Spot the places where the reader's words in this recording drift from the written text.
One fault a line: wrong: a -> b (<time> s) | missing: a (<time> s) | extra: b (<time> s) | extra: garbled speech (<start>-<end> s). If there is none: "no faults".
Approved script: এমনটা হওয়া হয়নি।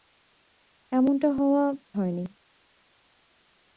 no faults